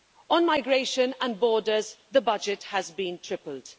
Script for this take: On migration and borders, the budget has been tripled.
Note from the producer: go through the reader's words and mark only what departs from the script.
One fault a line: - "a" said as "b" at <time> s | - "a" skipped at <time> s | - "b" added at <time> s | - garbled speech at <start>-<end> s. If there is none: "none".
none